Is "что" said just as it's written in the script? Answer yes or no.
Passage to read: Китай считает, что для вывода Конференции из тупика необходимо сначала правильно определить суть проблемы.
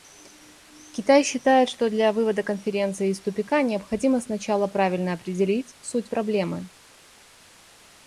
yes